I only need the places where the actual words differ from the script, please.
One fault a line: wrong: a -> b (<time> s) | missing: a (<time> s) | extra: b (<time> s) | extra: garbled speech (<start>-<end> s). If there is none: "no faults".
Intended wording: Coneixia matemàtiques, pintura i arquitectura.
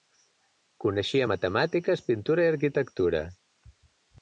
no faults